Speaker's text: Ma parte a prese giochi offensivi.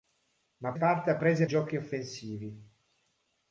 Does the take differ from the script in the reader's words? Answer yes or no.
no